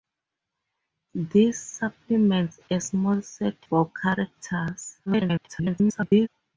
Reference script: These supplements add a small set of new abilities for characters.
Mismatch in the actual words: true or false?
true